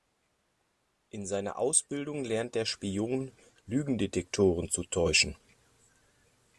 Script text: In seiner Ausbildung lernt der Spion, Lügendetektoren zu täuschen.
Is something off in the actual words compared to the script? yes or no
no